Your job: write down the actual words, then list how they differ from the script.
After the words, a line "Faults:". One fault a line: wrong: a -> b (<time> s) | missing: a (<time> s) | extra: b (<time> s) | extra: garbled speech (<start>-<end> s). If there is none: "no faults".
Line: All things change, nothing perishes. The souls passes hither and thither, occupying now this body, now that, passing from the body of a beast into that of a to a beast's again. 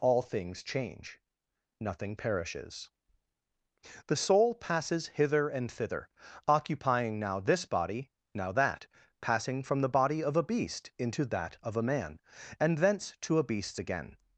All things change, nothing perishes. The soul passes hither and thither, occupying now this body, now that, passing from the body of a beast into that of a man, and thence to a beast's again.
Faults:
wrong: souls -> soul (4.2 s)
extra: man and thence (11.8 s)